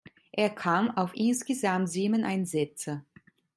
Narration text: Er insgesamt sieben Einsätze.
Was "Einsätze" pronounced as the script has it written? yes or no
yes